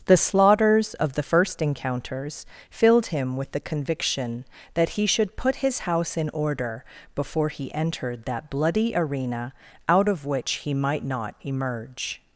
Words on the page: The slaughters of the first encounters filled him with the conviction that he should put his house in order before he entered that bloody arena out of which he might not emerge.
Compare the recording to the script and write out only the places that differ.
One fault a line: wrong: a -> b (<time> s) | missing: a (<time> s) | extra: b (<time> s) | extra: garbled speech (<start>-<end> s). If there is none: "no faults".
no faults